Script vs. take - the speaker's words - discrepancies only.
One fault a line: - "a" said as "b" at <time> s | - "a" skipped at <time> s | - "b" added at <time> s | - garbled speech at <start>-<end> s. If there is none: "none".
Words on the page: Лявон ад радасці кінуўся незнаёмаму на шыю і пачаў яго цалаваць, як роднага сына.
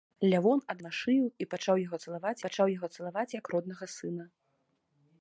- "радасці кінуўся незнаёмаму на шыю і" said as "на шыю і пачаў яго цалаваць" at 0.8 s